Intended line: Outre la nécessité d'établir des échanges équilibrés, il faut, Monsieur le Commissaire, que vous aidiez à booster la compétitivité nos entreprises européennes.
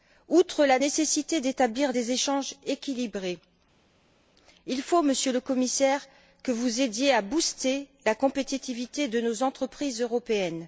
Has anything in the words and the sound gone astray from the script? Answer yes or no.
yes